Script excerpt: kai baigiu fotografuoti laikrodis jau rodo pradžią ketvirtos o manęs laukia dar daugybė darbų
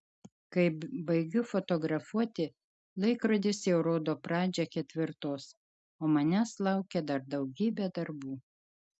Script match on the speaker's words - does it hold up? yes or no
yes